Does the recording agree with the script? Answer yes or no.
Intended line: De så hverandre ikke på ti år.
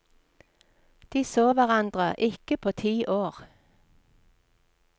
yes